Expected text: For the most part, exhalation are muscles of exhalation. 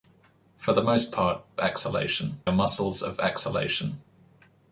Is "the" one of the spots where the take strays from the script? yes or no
no